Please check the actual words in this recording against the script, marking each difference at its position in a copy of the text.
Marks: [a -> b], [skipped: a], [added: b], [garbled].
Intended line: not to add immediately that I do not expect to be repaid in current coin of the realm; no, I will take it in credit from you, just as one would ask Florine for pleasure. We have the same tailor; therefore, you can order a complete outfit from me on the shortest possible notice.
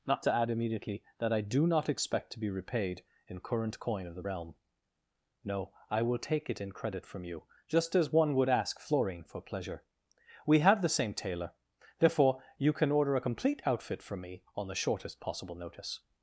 not to add immediately that I do not expect to be repaid in current coin of the realm; no, I will take it in credit from you, just as one would ask Florine for pleasure. We have the same tailor; therefore, you can order a complete outfit from me on the shortest possible notice.